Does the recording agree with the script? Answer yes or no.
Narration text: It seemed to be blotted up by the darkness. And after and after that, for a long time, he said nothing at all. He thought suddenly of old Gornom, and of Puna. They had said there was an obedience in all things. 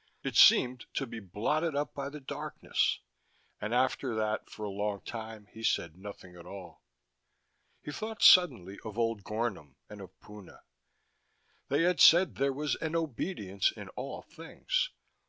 no